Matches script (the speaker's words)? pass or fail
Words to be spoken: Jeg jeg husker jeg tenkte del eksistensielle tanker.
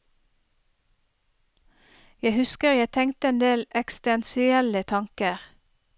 fail